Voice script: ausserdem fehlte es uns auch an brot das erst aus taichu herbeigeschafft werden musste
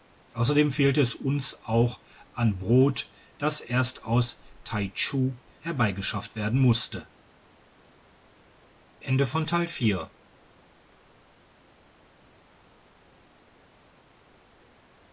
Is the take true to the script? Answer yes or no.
yes